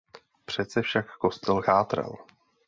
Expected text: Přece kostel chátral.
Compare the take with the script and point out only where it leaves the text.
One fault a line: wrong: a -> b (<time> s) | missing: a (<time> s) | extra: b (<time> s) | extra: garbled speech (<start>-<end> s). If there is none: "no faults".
extra: však (0.8 s)